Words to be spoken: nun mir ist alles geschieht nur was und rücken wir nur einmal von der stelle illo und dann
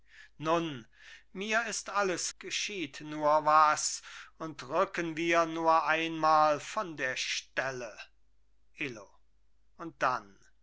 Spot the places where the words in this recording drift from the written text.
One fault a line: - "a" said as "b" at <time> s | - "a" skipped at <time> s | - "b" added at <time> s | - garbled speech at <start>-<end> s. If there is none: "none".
none